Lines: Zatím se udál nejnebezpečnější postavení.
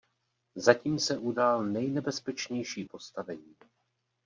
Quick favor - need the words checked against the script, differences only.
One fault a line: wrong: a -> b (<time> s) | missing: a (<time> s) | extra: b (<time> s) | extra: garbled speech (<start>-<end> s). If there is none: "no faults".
no faults